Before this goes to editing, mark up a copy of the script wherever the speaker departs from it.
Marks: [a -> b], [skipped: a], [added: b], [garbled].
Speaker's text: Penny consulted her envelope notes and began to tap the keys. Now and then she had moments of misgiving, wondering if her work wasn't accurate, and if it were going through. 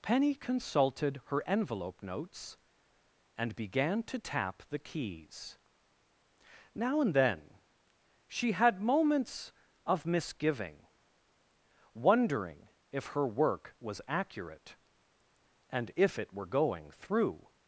Penny consulted her envelope notes and began to tap the keys. Now and then she had moments of misgiving, wondering if her work [wasn't -> was] accurate, and if it were going through.